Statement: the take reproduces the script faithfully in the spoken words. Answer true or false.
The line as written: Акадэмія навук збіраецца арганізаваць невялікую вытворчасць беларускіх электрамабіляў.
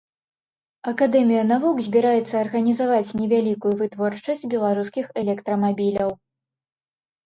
true